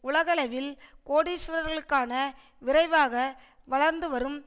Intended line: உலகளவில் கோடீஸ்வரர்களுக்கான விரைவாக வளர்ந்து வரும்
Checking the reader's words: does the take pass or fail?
pass